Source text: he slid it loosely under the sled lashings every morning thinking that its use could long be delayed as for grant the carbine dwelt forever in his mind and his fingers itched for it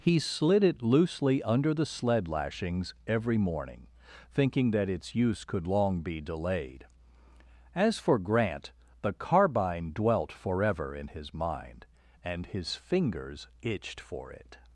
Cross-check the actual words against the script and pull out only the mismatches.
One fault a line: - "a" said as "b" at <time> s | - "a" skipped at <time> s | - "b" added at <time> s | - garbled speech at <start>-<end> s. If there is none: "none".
none